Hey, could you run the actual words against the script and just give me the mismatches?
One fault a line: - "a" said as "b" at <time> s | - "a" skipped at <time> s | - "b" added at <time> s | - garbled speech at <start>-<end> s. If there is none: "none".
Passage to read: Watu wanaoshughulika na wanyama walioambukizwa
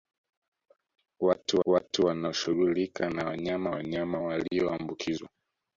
- "watu" added at 1.6 s
- "wanyama" added at 3.7 s